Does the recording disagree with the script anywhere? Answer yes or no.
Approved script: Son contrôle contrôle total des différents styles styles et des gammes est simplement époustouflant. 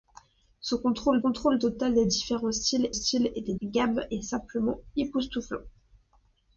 no